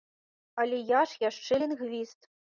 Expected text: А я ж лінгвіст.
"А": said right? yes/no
no